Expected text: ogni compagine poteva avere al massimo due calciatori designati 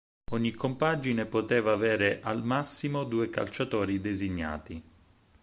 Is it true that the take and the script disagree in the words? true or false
false